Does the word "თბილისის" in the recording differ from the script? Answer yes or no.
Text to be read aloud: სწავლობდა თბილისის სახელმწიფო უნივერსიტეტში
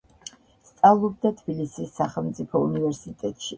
no